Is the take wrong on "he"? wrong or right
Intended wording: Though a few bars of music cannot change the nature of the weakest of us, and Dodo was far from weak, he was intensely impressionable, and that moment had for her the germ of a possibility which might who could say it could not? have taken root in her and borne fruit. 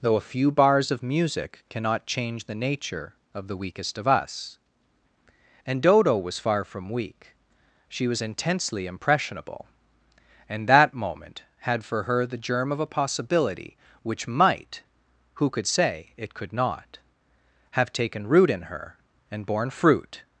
wrong